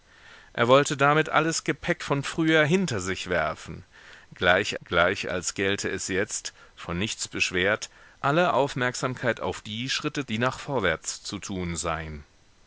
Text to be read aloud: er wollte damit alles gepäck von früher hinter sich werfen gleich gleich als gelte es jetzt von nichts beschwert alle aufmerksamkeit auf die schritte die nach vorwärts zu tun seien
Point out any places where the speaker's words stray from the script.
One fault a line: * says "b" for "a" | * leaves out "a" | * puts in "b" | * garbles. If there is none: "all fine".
all fine